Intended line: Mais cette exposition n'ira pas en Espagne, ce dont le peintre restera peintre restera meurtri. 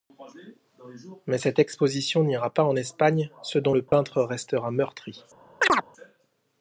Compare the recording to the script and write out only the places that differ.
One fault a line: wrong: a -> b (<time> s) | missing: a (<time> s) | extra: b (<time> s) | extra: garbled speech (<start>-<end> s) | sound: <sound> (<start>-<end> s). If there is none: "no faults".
sound: dropout (3.9-3.9 s)
missing: peintre restera (4.7 s)
sound: chirp (5.6-5.9 s)